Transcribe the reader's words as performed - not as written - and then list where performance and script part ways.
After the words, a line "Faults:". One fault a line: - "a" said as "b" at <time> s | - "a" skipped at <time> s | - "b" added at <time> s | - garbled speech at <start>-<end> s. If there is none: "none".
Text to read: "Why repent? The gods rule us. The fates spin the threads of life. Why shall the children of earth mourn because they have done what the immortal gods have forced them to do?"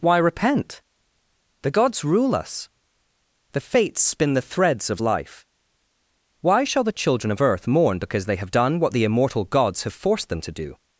"Why repent? The gods rule us. The fates spin the threads of life. Why shall the children of earth mourn because they have done what the immortal gods have forced them to do?"
Faults:
none